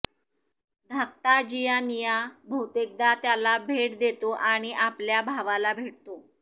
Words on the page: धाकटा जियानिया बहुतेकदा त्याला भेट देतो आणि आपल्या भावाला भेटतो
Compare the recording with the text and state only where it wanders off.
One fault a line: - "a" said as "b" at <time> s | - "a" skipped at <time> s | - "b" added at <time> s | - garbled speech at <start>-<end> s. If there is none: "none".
none